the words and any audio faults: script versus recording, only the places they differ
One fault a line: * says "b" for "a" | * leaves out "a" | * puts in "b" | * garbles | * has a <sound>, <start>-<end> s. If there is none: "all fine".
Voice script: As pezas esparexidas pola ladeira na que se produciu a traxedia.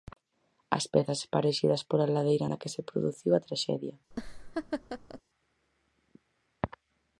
* has a laugh, 4.1-5.2 s